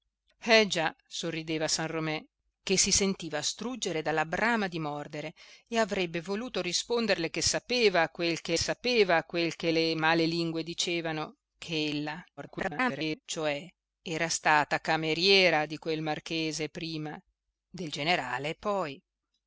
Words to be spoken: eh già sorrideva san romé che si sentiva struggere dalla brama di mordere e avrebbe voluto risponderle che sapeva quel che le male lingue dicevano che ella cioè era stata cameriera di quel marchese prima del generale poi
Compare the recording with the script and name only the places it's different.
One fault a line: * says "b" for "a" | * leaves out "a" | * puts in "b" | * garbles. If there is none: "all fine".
* puts in "sapeva quel che"
* garbles